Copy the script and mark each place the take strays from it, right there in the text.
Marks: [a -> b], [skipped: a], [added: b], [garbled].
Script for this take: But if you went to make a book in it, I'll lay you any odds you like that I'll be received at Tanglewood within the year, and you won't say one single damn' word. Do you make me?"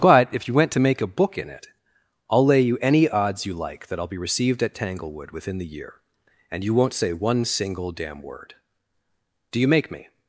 But if you went to make a book in it, I'll lay you any odds you like that I'll be received at Tanglewood within the year, and you won't say one single damn' word. Do you make me?"